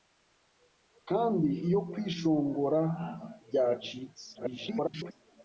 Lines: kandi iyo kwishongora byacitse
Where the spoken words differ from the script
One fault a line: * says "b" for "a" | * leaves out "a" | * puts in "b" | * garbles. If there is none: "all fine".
* garbles